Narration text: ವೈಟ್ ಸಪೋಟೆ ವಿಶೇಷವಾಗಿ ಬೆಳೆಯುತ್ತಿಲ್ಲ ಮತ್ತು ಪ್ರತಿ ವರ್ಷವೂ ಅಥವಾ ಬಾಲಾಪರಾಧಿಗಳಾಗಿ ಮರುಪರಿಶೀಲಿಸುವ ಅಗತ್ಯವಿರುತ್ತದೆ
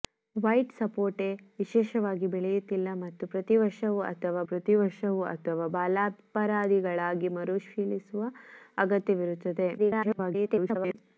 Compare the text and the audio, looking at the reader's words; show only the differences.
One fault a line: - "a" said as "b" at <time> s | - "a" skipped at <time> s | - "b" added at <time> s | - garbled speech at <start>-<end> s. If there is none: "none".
- "ಪ್ರತಿ ವರ್ಷವೂ ಅಥವಾ" added at 4.5 s
- garbled speech at 9.8-10.9 s